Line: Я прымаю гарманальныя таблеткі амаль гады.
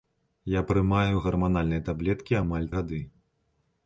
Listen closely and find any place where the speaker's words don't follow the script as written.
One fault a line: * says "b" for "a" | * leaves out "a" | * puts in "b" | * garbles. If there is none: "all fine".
all fine